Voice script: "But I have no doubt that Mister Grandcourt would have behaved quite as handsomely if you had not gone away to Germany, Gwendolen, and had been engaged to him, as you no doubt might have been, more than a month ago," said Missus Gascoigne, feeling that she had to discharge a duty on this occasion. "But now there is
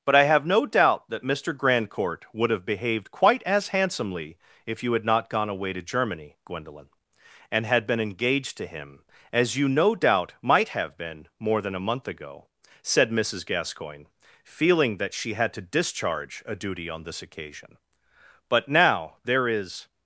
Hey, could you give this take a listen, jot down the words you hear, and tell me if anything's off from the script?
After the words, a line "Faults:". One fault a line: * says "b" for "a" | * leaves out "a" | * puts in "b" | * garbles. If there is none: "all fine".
"But I have no doubt that Mister Grandcourt would have behaved quite as handsomely if you had not gone away to Germany, Gwendolen, and had been engaged to him, as you no doubt might have been, more than a month ago," said Missus Gascoigne, feeling that she had to discharge a duty on this occasion. "But now there is
Faults:
all fine